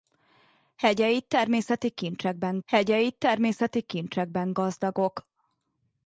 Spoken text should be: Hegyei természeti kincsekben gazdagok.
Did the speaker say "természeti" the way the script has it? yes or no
yes